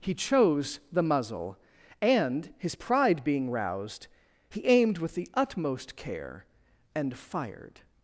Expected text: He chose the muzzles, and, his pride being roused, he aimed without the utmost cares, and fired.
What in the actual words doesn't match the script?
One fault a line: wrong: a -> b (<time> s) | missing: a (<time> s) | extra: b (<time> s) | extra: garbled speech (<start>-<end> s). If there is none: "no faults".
wrong: muzzles -> muzzle (1.0 s)
wrong: without -> with (5.0 s)
wrong: cares -> care (5.9 s)